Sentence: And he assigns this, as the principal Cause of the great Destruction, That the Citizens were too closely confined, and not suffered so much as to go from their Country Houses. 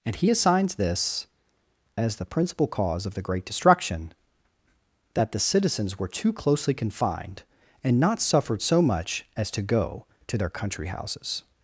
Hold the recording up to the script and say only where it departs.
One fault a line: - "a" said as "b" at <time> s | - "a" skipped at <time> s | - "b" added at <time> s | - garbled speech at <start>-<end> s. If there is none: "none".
- "from" said as "to" at 10.3 s